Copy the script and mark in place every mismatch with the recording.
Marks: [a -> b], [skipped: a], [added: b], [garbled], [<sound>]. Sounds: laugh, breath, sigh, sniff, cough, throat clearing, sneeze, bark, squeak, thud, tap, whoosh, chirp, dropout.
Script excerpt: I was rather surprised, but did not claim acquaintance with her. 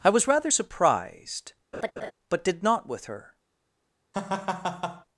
I was rather surprised, [laugh] but did not [skipped: claim acquaintance] with her. [laugh]